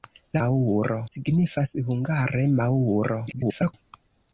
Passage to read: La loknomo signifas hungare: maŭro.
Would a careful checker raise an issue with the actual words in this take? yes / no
yes